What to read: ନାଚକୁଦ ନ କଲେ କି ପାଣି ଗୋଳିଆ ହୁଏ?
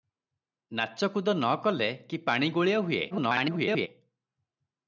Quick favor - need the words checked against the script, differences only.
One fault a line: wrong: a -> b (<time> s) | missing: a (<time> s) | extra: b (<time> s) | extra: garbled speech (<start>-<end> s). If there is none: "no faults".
extra: garbled speech (3.1-3.9 s)